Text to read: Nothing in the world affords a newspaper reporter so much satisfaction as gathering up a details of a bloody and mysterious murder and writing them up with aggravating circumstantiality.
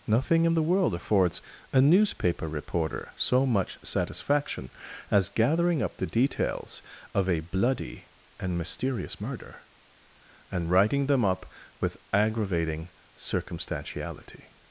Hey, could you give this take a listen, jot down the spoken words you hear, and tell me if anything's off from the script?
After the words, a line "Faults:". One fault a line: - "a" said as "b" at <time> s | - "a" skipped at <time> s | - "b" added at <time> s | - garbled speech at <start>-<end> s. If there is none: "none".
Nothing in the world affords a newspaper reporter so much satisfaction as gathering up the details of a bloody and mysterious murder and writing them up with aggravating circumstantiality.
Faults:
- "a" said as "the" at 6.0 s